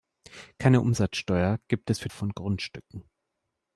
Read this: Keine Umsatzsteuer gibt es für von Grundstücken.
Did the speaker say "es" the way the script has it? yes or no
yes